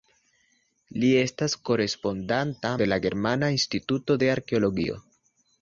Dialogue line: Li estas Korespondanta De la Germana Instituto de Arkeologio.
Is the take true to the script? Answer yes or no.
yes